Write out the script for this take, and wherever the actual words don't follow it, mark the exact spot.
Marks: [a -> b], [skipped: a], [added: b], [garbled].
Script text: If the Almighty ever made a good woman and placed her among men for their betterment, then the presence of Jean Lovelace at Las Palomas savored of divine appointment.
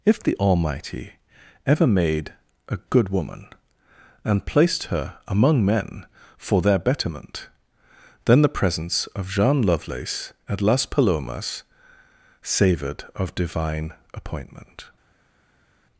If the Almighty ever made a good woman and placed her among men for their betterment, then the presence of Jean Lovelace at Las Palomas savored of divine appointment.